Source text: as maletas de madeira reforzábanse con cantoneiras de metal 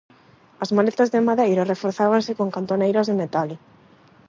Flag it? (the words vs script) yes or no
no